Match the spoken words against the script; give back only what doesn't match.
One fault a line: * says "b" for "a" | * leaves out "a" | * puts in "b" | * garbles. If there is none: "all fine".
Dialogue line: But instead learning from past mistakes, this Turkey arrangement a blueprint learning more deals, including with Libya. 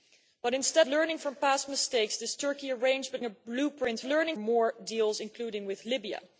all fine